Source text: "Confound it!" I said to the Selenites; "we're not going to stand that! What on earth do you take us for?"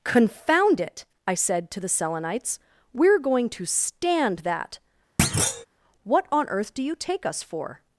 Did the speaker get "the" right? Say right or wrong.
right